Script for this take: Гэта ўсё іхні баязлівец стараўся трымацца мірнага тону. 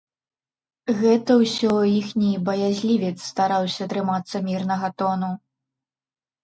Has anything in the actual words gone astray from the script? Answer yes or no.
no